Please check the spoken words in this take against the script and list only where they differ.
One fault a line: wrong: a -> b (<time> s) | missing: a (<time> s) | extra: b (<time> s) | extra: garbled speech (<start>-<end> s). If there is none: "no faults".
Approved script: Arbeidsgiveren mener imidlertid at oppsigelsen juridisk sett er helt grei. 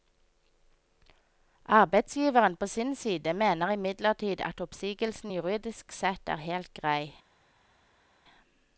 extra: på sin side (2.6 s)